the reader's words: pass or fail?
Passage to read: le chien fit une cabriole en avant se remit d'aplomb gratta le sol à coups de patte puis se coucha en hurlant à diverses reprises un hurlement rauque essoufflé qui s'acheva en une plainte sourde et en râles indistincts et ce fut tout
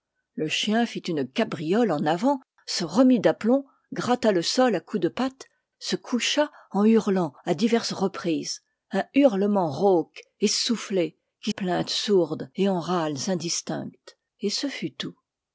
fail